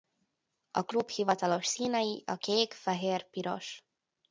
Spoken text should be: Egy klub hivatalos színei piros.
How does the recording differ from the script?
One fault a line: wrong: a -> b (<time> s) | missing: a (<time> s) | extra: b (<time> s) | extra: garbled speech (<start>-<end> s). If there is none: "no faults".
wrong: Egy -> A (0.7 s)
extra: a kék fehér (2.2 s)